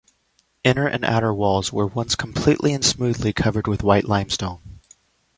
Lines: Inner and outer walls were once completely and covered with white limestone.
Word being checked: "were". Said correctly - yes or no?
yes